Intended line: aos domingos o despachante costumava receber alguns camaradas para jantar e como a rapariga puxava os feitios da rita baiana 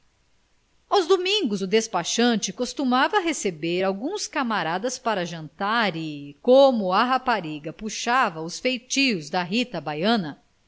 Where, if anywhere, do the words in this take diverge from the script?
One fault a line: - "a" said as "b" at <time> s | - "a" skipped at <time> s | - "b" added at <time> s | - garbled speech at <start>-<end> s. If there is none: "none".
none